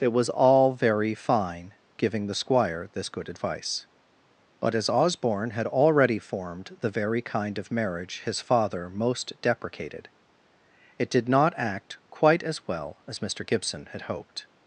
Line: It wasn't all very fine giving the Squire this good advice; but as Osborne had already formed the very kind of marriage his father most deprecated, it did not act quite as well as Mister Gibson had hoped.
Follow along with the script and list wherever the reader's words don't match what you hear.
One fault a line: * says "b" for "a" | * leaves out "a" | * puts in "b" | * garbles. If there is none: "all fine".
* says "was" for "wasn't"